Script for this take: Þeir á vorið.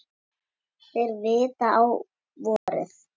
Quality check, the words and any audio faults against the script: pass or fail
fail